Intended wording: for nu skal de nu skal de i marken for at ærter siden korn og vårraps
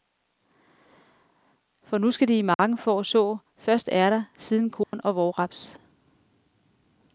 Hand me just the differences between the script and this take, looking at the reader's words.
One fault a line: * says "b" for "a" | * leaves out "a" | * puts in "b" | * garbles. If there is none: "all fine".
* leaves out "nu skal de"
* puts in "så først"